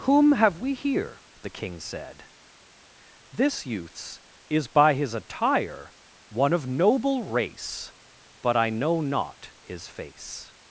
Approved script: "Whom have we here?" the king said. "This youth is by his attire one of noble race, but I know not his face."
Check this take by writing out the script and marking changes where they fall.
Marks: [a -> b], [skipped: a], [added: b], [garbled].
"Whom have we here?" the king said. "This [youth -> youths] is by his attire one of noble race, but I know not his face."